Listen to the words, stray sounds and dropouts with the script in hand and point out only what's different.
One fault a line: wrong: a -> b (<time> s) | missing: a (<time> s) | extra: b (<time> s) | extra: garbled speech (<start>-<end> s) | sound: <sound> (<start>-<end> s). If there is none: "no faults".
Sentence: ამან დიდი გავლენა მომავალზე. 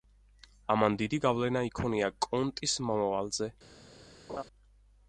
extra: იქონია კონტის (1.7 s)
sound: laugh (4.3-4.4 s)